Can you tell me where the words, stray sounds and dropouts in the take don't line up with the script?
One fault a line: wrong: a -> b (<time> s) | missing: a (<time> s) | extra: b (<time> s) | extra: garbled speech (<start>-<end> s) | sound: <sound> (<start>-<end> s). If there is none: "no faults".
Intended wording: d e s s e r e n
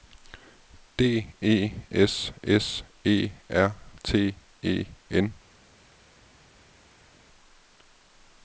extra: t (4.0 s)